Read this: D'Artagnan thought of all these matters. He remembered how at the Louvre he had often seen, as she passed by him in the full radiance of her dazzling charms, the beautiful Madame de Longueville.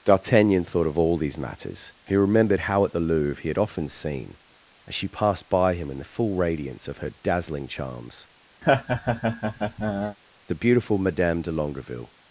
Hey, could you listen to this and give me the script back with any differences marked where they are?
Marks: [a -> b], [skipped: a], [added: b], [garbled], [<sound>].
D'Artagnan thought of all these matters. He remembered how at the Louvre he had often seen, as she passed by him in the full radiance of her dazzling charms, [laugh] the beautiful Madame de Longueville.